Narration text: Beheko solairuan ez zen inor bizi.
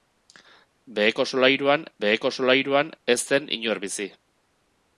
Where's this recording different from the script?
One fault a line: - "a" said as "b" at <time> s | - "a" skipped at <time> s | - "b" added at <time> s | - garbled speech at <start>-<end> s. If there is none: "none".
- "beheko solairuan" added at 2.0 s